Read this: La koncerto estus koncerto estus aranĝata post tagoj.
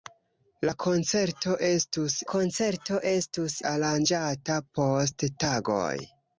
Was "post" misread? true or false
false